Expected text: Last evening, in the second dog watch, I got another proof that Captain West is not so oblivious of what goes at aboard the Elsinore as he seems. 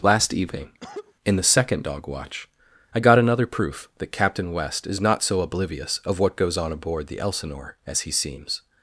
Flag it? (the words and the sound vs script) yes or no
yes